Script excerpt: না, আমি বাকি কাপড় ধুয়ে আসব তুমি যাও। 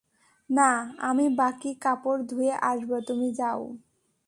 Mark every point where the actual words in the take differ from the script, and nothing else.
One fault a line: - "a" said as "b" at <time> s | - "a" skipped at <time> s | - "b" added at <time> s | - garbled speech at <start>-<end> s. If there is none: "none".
none